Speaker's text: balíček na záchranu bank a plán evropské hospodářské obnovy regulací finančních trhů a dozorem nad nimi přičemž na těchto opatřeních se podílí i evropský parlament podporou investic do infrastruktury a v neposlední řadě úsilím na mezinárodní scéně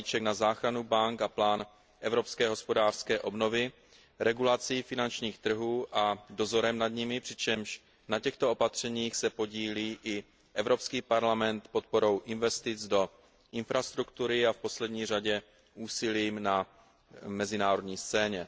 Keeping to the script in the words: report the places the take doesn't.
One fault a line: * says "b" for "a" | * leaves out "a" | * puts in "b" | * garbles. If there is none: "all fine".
all fine